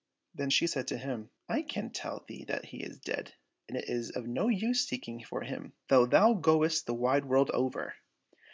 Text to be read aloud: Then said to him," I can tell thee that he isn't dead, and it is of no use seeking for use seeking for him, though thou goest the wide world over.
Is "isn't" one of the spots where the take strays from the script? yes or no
yes